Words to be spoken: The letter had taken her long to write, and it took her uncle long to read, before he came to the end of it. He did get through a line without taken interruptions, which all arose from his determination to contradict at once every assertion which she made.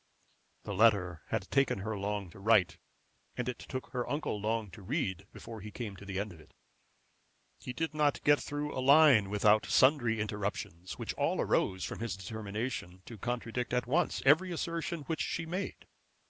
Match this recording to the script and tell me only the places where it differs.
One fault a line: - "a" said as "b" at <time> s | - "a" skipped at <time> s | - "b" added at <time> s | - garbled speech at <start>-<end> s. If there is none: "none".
- "not" added at 7.9 s
- "taken" said as "sundry" at 9.7 s